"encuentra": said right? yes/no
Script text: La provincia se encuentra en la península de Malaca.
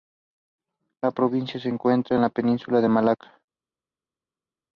yes